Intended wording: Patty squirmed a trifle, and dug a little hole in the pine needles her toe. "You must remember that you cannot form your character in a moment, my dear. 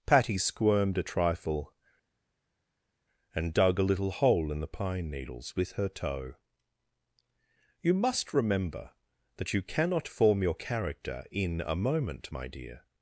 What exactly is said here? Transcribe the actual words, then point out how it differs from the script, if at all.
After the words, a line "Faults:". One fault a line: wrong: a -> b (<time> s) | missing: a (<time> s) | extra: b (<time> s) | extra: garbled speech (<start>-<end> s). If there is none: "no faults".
Patty squirmed a trifle, and dug a little hole in the pine needles with her toe. "You must remember that you cannot form your character in a moment, my dear.
Faults:
extra: with (5.5 s)